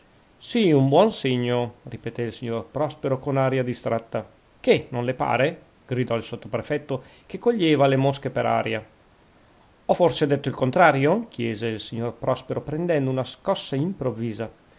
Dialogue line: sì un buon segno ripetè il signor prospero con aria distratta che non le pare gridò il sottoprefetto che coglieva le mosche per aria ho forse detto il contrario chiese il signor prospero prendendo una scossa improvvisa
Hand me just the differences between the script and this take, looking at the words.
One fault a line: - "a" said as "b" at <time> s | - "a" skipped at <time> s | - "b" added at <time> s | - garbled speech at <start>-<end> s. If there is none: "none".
none